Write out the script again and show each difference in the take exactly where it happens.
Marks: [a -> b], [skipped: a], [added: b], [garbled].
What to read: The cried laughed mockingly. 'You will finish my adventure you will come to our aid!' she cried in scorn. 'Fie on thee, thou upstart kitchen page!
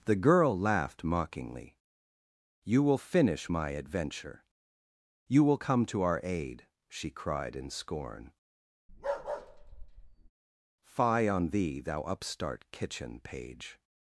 The [cried -> girl] laughed mockingly. 'You will finish my adventure you will come to our aid!' she cried in scorn. 'Fie on thee, thou upstart kitchen page!